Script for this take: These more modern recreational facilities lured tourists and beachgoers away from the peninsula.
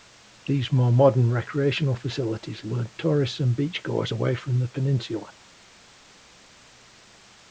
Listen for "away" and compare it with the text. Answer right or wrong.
right